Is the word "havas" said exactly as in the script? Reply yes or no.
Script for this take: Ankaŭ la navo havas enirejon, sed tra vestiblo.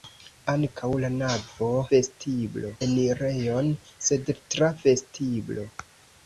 no